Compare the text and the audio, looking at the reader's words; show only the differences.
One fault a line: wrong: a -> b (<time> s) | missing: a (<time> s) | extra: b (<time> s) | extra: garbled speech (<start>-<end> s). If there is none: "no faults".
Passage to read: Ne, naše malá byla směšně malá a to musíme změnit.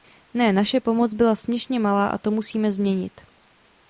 wrong: malá -> pomoc (0.8 s)